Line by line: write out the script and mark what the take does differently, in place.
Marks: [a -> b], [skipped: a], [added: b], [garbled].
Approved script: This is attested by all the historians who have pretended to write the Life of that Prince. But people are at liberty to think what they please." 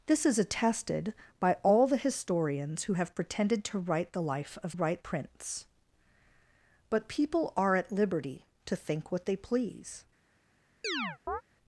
This is attested by all the historians who have pretended to write the Life of [that -> write] Prince. But people are at liberty to think what they please."